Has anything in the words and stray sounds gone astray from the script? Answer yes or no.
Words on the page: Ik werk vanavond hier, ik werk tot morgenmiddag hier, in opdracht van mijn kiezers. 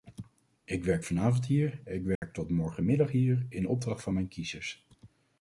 yes